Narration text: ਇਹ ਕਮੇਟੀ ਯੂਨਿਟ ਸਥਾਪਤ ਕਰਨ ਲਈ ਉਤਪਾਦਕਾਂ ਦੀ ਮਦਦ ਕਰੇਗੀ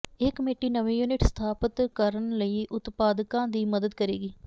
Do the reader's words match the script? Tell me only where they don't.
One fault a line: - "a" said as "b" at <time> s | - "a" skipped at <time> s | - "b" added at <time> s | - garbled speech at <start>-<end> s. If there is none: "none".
- "ਨਵੇਂ" added at 0.7 s